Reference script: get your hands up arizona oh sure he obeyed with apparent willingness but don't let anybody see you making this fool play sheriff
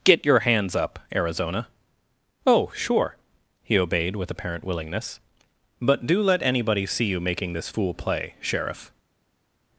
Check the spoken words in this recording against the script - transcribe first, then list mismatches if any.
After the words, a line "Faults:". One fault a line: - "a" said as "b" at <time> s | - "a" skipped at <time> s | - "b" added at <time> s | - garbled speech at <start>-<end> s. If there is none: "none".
get your hands up arizona oh sure he obeyed with apparent willingness but do let anybody see you making this fool play sheriff
Faults:
- "don't" said as "do" at 6.1 s